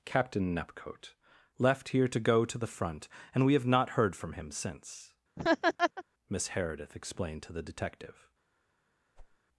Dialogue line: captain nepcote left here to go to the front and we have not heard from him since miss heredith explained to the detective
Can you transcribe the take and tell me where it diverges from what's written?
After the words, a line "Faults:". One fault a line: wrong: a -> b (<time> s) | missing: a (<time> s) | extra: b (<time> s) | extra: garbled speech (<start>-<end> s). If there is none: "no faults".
captain nepcote left here to go to the front and we have not heard from him since miss heredith explained to the detective
Faults:
no faults